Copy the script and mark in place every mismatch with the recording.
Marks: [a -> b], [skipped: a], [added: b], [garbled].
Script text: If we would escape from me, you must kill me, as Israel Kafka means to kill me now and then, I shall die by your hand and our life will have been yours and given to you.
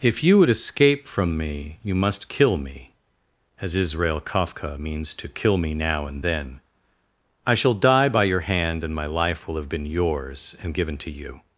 If [we -> you] would escape from me, you must kill me, as Israel Kafka means to kill me now and then, I shall die by your hand and [our -> my] life will have been yours and given to you.